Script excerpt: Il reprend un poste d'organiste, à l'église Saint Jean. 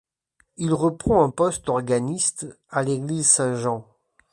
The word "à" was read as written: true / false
true